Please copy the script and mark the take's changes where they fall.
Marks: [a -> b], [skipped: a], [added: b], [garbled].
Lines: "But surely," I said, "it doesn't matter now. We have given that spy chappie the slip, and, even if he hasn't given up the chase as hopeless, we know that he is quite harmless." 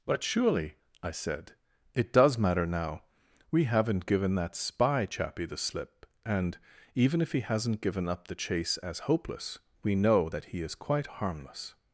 "But surely," I said, "it [doesn't -> does] matter now. We [have -> haven't] given that spy chappie the slip, and, even if he hasn't given up the chase as hopeless, we know that he is quite harmless."